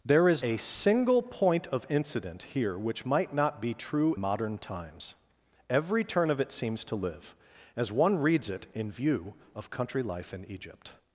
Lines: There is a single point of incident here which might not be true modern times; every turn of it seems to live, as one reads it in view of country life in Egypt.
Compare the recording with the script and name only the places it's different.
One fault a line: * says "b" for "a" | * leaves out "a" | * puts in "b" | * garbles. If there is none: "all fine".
all fine